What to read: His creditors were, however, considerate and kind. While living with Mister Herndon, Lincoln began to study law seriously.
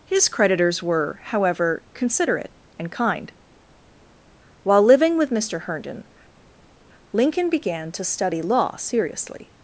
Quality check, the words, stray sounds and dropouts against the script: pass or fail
pass